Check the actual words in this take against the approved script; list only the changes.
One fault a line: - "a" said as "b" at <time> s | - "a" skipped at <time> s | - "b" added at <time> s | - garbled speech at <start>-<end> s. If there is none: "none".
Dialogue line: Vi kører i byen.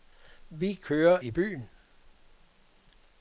none